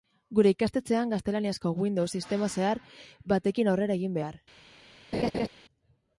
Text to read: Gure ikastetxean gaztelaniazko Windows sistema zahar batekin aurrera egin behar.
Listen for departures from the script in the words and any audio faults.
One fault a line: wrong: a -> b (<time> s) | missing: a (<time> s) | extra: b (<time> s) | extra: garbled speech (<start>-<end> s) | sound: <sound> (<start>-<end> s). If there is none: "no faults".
sound: laugh (5.1-5.5 s)